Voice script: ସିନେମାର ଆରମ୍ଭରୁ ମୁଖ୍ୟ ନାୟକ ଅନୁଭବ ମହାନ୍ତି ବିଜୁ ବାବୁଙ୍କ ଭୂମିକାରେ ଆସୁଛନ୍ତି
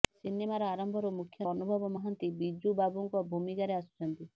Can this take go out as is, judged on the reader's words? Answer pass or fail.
fail